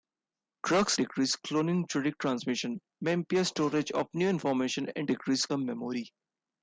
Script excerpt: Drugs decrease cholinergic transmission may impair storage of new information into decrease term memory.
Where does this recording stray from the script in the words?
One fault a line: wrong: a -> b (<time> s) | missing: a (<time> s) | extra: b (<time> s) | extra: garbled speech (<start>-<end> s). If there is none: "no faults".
no faults